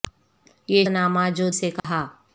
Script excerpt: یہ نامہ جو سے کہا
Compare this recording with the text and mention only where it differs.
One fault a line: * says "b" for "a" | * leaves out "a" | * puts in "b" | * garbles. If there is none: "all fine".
all fine